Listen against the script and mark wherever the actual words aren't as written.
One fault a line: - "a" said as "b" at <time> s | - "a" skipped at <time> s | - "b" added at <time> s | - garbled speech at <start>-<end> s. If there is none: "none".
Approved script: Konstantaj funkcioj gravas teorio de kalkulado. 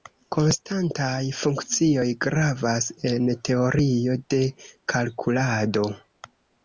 - "en" added at 3.1 s